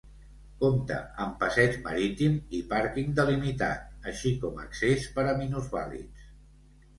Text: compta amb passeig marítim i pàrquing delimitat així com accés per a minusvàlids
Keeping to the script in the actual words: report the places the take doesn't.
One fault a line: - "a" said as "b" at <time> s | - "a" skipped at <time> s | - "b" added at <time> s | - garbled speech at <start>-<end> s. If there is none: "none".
none